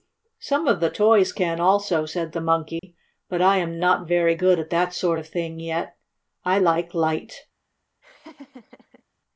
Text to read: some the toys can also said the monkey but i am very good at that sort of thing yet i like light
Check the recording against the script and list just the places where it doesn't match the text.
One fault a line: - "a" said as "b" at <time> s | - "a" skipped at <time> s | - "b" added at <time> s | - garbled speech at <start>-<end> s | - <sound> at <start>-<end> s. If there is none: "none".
- "of" added at 0.7 s
- dropout at 2.8-2.8 s
- "not" added at 3.8 s
- laugh at 8.0-9.0 s